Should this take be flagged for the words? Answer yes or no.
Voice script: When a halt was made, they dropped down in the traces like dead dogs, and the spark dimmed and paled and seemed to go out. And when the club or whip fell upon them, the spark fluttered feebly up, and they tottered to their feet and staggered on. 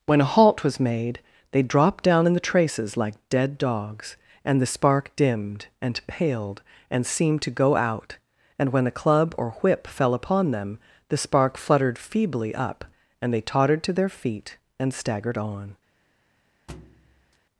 yes